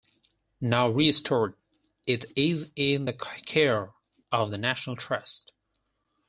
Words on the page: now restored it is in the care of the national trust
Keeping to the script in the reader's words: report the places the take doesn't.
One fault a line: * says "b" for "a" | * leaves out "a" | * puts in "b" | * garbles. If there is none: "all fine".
all fine